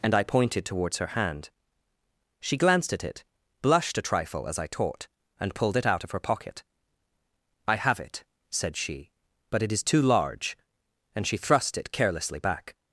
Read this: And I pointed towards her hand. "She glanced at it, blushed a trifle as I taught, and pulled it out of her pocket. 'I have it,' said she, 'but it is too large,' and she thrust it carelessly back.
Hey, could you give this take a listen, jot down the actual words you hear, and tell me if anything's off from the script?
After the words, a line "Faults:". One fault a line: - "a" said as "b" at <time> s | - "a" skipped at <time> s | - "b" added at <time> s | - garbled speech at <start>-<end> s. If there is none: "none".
And I pointed towards her hand. "She glanced at it, blushed a trifle as I taught, and pulled it out of her pocket. 'I have it,' said she, 'but it is too large,' and she thrust it carelessly back.
Faults:
none